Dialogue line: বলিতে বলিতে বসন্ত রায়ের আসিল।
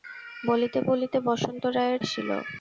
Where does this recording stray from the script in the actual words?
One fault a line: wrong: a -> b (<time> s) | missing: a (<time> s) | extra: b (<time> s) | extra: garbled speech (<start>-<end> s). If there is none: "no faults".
no faults